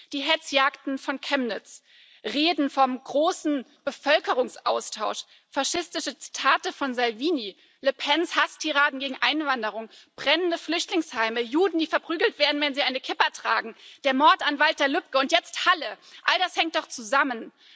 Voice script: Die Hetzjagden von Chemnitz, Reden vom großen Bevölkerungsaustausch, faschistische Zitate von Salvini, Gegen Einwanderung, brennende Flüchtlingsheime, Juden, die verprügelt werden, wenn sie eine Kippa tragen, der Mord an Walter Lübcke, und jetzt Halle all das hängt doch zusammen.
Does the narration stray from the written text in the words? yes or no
yes